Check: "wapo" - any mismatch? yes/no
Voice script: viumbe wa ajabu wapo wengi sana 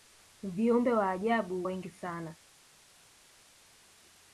yes